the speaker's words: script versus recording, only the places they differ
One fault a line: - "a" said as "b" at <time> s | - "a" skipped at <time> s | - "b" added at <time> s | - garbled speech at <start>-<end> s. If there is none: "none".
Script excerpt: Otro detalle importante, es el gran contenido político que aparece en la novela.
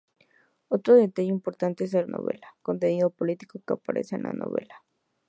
- "gran" said as "novela" at 2.0 s